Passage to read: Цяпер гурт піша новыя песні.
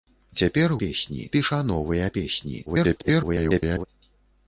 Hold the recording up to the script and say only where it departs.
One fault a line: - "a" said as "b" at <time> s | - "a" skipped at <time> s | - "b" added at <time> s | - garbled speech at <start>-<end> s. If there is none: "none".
- "гурт" said as "песні" at 0.8 s
- garbled speech at 2.7-3.9 s